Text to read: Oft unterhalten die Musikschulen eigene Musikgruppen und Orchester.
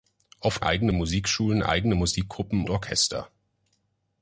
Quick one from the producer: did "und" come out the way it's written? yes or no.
no